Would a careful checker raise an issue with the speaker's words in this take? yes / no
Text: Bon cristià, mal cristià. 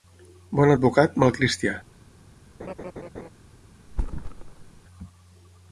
yes